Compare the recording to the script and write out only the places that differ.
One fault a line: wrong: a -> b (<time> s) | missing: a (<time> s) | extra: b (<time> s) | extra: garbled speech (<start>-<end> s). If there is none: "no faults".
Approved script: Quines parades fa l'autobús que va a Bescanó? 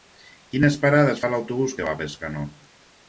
no faults